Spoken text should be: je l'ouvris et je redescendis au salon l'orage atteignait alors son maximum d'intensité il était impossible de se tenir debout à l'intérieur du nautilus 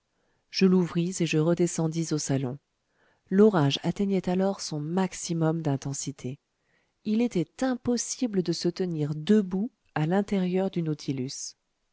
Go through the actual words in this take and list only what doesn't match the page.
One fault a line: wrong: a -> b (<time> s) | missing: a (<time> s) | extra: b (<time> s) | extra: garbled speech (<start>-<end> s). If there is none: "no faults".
no faults